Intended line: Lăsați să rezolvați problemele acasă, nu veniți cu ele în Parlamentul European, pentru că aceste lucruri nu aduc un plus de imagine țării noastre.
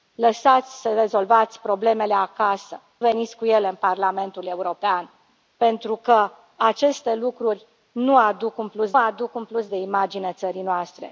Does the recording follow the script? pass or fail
fail